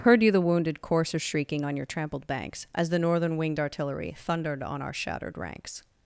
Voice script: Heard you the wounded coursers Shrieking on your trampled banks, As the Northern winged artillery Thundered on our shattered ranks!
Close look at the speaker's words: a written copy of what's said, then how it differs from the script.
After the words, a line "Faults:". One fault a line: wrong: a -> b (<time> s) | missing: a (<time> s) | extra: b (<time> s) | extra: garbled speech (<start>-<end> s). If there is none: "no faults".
Heard you the wounded coursers Shrieking on your trampled banks, As the Northern winged artillery Thundered on our shattered ranks!
Faults:
no faults